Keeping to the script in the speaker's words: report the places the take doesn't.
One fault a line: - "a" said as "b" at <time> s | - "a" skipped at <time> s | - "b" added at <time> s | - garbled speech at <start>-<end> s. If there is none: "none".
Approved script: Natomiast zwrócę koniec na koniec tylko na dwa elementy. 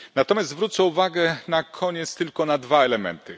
- "koniec" said as "uwagę" at 0.8 s